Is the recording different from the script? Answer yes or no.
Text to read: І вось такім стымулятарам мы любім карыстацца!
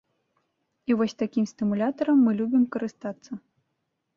no